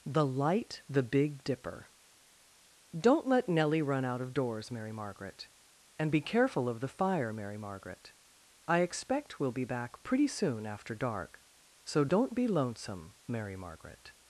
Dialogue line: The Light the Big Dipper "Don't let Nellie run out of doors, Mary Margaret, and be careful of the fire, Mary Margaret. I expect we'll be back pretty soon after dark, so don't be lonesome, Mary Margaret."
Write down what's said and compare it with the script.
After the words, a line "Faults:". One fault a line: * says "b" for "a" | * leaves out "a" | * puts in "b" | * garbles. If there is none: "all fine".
The Light the Big Dipper "Don't let Nellie run out of doors, Mary Margaret, and be careful of the fire, Mary Margaret. I expect we'll be back pretty soon after dark, so don't be lonesome, Mary Margaret."
Faults:
all fine